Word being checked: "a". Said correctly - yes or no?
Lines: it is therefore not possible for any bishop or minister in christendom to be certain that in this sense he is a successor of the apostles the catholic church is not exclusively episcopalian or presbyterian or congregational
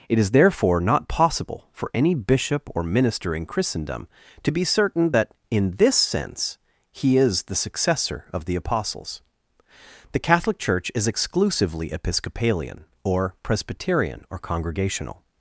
no